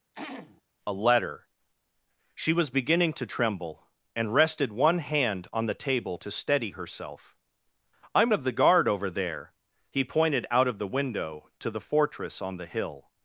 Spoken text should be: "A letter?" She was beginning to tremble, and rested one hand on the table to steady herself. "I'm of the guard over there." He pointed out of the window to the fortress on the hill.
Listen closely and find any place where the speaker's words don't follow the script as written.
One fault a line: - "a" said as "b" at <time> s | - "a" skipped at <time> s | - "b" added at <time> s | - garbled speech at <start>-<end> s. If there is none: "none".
none